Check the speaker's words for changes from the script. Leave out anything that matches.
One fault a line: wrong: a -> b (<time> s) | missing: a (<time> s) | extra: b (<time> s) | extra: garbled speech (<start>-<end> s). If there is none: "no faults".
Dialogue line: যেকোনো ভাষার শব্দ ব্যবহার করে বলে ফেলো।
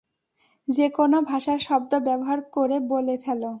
no faults